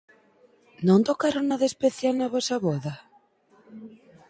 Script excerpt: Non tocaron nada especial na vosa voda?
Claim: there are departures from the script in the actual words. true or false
false